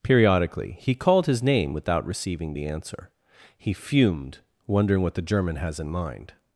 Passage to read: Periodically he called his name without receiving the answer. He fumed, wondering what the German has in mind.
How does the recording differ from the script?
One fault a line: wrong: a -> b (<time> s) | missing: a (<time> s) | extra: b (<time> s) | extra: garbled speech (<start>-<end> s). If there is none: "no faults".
no faults